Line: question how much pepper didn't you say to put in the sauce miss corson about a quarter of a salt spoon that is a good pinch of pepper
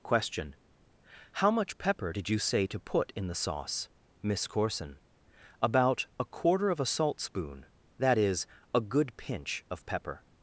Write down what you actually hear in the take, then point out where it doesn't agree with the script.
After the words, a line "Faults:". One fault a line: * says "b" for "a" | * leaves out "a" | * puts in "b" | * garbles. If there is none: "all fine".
question how much pepper did you say to put in the sauce miss corson about a quarter of a salt spoon that is a good pinch of pepper
Faults:
* says "did" for "didn't"